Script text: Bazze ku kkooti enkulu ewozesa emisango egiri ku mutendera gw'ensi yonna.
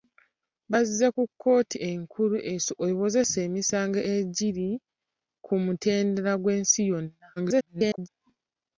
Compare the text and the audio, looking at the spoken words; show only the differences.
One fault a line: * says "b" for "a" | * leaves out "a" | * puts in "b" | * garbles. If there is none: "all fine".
* garbles